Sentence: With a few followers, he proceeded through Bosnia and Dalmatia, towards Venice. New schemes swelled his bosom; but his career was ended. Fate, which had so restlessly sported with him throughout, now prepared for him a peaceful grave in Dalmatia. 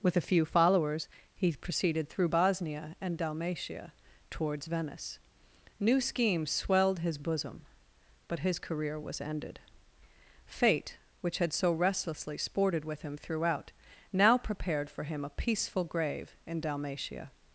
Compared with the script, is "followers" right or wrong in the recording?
right